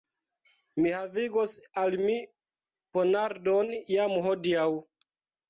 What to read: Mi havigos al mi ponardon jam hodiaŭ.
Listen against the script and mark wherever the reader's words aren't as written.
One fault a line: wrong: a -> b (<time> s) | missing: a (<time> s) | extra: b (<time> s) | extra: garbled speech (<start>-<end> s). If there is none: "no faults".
no faults